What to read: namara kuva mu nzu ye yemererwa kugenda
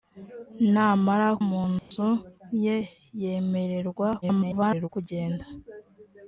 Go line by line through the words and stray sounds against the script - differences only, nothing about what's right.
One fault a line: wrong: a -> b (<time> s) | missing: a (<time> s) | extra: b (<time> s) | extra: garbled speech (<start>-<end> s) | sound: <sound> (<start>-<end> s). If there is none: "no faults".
missing: kuva (1.3 s)
sound: dropout (1.8-1.9 s)
extra: garbled speech (4.2-4.9 s)